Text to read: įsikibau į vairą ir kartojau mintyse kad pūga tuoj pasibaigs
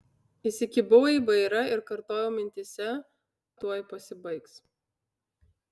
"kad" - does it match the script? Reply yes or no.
no